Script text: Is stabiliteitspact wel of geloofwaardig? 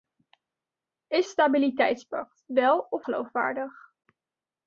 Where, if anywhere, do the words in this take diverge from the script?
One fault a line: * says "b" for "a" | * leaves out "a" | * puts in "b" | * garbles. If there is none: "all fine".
all fine